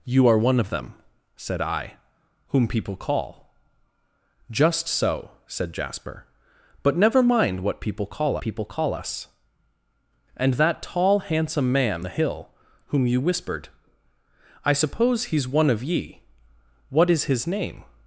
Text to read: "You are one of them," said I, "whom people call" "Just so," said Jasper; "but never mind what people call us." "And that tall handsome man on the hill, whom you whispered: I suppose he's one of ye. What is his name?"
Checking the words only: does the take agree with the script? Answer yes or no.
no